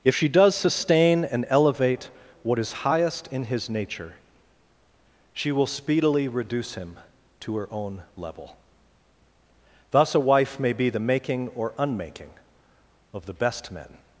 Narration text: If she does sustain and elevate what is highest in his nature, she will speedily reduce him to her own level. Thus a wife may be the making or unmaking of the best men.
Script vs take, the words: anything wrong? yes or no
no